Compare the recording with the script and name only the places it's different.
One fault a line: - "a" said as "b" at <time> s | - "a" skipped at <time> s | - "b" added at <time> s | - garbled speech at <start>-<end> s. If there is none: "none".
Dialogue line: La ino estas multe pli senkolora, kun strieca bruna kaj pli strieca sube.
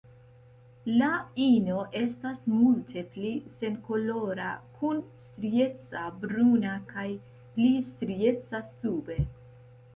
none